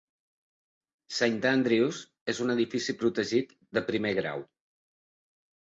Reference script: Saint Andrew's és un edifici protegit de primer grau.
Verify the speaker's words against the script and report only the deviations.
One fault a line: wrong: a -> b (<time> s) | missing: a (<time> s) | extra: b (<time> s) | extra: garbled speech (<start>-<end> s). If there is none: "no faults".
no faults